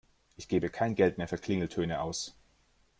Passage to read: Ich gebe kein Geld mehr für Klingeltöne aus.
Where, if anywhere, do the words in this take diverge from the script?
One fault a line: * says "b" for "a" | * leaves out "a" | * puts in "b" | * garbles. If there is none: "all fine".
all fine